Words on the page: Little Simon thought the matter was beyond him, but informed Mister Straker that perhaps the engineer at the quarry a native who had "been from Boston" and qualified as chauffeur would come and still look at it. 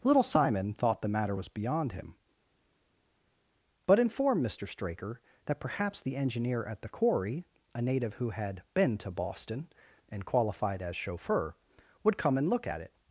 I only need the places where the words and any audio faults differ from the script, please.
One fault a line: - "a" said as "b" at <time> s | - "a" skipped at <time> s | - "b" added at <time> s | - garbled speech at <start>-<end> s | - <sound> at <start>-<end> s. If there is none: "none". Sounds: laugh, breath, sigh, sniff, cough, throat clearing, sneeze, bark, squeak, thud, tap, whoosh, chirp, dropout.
- "from" said as "to" at 9.0 s
- "still" skipped at 12.5 s